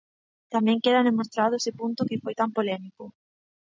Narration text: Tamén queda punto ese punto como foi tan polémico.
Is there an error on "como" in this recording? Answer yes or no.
yes